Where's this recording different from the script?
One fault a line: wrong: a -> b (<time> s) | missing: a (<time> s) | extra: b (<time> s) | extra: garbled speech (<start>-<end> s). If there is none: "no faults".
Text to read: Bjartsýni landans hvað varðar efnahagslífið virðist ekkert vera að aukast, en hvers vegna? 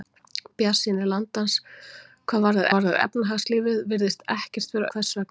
extra: varðar (2.7 s)
missing: að aukast en (4.9 s)